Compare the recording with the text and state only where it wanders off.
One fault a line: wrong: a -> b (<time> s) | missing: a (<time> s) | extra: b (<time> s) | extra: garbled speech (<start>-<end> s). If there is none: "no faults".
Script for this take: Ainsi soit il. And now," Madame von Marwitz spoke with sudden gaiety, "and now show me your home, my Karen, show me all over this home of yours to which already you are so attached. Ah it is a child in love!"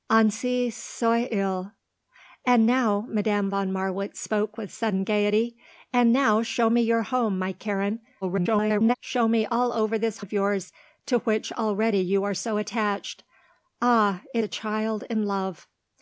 extra: garbled speech (8.2-8.9 s)
missing: home (10.2 s)
missing: is (14.4 s)